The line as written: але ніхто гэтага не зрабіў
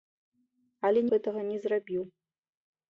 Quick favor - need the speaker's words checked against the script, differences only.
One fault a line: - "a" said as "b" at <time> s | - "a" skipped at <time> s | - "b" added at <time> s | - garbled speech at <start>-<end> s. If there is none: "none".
- "ніхто" skipped at 1.0 s